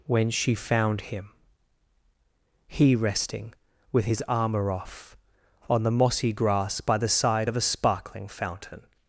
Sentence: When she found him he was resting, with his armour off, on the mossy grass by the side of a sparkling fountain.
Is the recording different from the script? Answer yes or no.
yes